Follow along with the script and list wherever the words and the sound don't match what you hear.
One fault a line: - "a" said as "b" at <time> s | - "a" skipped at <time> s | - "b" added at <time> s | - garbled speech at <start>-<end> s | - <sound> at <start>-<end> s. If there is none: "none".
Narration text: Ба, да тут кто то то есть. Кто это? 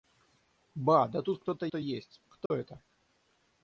- dropout at 2.5-2.5 s